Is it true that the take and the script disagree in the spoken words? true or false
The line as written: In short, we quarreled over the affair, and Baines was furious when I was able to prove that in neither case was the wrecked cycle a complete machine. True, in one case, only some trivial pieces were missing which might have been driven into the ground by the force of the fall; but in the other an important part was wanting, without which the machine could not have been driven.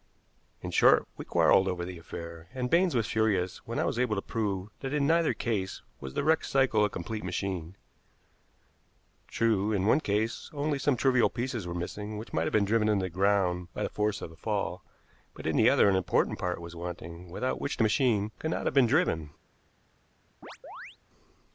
false